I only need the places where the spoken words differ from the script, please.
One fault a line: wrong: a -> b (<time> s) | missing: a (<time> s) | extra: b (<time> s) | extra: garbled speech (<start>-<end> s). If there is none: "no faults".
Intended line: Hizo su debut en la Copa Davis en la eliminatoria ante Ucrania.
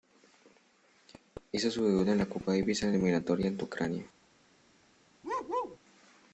no faults